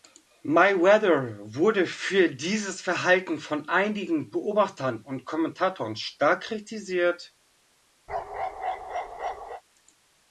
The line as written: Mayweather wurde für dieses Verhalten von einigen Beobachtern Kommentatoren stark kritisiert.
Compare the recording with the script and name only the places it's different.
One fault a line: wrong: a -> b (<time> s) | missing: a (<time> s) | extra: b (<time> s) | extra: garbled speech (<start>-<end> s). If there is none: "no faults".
extra: und (5.0 s)